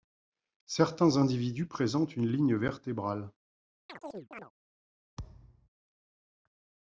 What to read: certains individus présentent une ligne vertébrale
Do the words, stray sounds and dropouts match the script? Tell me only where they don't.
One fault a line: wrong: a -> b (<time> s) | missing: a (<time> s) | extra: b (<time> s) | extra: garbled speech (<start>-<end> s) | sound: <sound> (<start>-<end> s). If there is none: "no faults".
sound: chirp (3.9-4.5 s)
sound: thud (5.2-5.7 s)